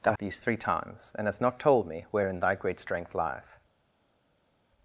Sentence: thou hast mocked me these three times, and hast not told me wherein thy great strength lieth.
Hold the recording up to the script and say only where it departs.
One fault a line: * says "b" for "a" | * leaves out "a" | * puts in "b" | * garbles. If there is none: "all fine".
* leaves out "hast mocked me"